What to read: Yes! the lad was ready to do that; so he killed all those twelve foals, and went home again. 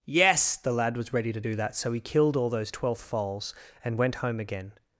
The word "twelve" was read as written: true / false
false